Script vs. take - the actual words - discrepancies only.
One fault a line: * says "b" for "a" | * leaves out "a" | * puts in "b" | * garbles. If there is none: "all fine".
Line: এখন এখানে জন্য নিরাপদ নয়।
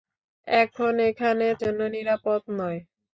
all fine